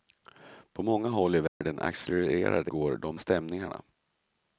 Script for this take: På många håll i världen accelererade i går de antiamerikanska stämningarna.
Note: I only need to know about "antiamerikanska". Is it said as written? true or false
false